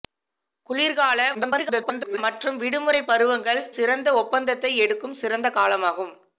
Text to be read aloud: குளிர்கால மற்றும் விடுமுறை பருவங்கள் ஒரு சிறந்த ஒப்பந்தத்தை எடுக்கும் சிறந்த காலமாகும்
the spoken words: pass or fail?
fail